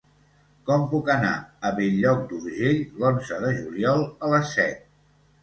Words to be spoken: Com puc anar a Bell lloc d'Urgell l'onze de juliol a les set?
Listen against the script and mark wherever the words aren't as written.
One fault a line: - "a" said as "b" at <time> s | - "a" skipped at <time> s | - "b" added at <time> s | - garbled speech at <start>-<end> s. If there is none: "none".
none